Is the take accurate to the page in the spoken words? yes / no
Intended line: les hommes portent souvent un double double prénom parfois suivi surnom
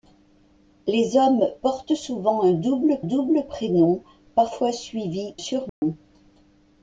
yes